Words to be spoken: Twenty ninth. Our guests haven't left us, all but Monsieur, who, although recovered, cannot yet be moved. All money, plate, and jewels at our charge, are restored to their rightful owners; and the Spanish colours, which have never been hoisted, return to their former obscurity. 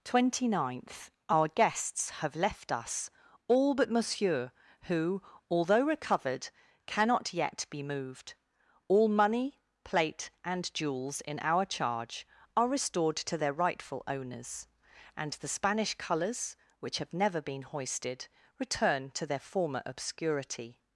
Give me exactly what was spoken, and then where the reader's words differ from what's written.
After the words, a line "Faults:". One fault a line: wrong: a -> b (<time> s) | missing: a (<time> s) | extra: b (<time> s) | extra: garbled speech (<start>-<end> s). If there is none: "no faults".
Twenty ninth. Our guests have left us, all but Monsieur, who, although recovered, cannot yet be moved. All money, plate, and jewels in our charge, are restored to their rightful owners; and the Spanish colours, which have never been hoisted, return to their former obscurity.
Faults:
wrong: haven't -> have (2.2 s)
wrong: at -> in (11.2 s)